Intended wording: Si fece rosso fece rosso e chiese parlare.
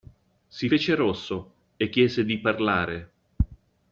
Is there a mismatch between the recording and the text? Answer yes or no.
yes